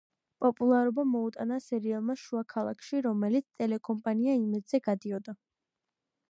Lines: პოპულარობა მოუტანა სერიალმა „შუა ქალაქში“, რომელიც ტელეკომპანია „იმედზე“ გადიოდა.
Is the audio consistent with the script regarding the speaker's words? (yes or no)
yes